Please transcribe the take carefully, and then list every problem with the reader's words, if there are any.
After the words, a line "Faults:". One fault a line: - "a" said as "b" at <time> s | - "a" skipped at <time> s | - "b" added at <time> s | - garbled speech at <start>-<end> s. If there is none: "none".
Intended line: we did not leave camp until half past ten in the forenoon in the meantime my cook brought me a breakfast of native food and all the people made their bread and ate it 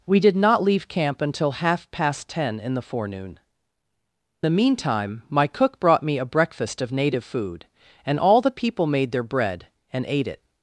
we did not leave camp until half past ten in the forenoon the meantime my cook brought me a breakfast of native food and all the people made their bread and ate it
Faults:
- "in" skipped at 3.4 s